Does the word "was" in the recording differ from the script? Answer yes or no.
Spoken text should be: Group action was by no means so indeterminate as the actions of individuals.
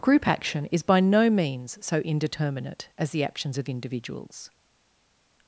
yes